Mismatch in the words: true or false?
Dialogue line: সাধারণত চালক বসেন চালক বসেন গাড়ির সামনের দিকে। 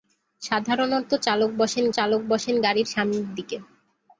false